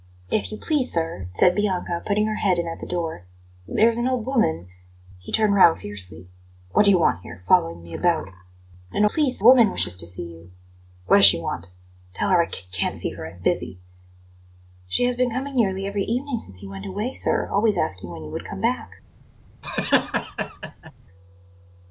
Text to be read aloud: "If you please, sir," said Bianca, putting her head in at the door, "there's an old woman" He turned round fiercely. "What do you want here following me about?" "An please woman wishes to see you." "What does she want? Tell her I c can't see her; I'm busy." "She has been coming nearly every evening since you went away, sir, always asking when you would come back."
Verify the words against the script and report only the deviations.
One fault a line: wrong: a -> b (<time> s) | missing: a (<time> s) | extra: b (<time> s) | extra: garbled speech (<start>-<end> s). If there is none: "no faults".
no faults